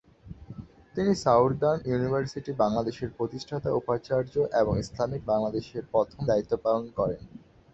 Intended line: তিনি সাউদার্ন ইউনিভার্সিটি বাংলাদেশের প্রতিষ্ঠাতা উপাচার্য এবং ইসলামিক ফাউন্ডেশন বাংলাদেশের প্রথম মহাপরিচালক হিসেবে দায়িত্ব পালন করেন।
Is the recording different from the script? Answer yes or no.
yes